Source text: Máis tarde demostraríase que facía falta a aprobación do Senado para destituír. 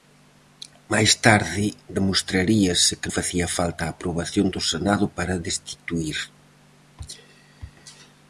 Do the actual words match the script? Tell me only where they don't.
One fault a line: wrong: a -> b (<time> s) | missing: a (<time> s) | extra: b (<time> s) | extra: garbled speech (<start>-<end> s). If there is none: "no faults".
no faults